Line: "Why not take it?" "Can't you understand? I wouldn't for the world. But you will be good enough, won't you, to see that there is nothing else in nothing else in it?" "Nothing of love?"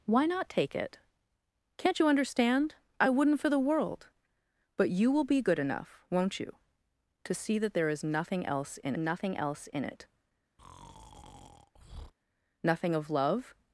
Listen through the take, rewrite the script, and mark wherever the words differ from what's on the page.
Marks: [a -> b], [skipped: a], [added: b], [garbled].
"Why not take it?" "Can't you understand? I wouldn't for the world. But you will be good enough, won't you, to see that there is nothing else in nothing else in it?" "Nothing of love?"